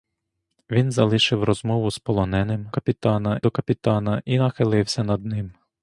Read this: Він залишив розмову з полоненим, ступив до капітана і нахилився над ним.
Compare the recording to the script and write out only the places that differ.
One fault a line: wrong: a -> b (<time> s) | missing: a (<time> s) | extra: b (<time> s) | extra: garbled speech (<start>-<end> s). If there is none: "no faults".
wrong: ступив -> капітана (2.7 s)